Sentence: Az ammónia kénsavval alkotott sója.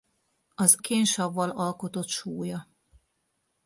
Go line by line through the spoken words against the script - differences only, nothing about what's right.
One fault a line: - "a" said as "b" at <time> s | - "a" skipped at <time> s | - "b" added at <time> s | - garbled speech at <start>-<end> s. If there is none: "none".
- "ammónia" skipped at 0.8 s